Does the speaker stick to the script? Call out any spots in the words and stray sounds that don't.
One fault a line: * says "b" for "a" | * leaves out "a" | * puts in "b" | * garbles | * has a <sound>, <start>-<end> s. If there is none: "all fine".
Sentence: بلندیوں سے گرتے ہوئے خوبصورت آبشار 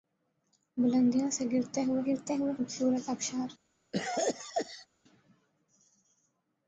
* puts in "گرتے ہوئے"
* has a cough, 3.9-4.9 s